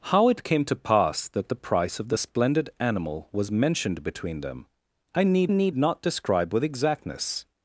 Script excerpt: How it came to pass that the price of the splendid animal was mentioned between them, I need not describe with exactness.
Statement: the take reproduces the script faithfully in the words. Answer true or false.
false